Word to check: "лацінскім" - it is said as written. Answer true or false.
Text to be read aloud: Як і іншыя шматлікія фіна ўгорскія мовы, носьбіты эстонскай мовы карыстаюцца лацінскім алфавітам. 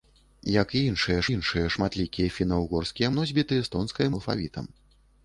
false